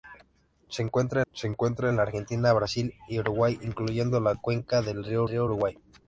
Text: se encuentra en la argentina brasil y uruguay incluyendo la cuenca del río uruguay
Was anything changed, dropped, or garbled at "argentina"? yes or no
no